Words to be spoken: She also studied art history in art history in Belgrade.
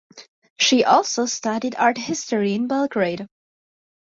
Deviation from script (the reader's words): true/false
true